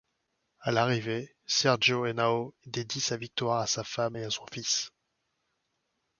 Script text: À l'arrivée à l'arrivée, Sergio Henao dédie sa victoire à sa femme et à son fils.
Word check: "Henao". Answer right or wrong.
right